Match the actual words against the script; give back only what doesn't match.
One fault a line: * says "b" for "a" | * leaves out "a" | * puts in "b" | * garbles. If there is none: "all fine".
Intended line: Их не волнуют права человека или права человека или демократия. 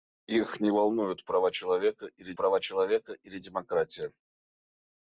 all fine